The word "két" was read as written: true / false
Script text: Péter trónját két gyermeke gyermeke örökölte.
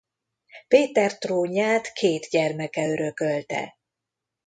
true